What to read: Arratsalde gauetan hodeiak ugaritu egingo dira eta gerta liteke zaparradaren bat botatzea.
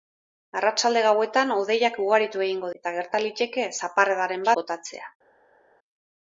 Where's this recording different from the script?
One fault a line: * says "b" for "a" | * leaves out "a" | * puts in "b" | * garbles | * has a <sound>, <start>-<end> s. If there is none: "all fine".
* leaves out "dira"
* leaves out "bat"